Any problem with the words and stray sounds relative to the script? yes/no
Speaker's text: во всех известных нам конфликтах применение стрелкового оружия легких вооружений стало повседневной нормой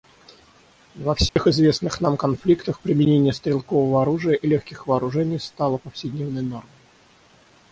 yes